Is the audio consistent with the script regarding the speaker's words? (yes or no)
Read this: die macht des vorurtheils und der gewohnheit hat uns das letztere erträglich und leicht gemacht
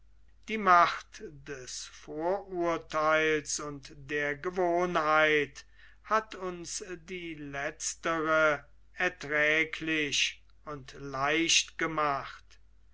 no